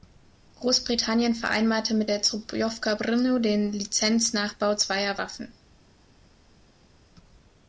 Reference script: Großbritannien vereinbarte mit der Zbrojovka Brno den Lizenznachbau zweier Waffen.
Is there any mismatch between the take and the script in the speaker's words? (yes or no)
no